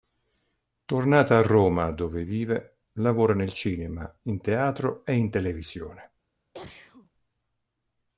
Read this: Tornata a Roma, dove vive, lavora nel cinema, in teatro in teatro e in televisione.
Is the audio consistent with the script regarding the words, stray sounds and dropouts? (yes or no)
no